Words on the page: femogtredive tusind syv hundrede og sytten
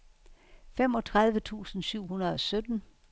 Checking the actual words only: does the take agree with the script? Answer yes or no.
yes